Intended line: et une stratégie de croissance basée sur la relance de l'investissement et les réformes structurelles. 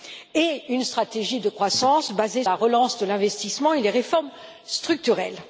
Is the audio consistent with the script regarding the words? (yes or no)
no